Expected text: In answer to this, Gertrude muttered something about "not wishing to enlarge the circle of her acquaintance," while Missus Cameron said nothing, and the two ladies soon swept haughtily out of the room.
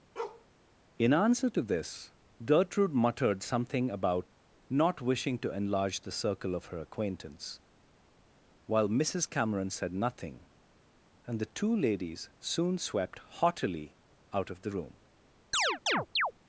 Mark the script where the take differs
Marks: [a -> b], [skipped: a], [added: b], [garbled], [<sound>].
[bark] In answer to this, Gertrude muttered something about "not wishing to enlarge the circle of her acquaintance," while Missus Cameron said nothing, and the two ladies soon swept haughtily out of the room. [chirp]